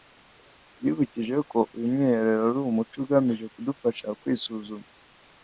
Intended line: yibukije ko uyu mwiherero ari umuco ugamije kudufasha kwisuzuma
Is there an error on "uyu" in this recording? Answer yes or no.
no